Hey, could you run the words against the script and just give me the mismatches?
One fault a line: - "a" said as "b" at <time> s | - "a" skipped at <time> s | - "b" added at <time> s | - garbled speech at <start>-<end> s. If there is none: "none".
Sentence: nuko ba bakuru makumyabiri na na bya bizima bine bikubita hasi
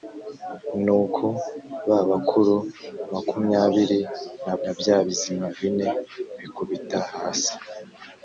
none